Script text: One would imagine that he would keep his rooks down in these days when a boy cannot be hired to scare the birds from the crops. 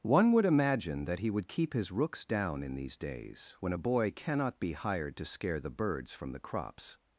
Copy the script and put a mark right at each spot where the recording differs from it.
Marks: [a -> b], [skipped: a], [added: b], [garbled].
One would imagine that he would keep his rooks down in these days when a boy cannot be hired to scare the birds from the crops.